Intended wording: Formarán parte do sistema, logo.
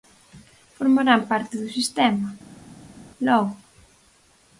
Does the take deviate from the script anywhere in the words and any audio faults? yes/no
no